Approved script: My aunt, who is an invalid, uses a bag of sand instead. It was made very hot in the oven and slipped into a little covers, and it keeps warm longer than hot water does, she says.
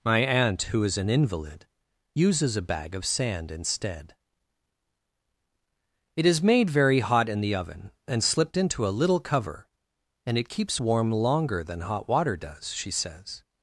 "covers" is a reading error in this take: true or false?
true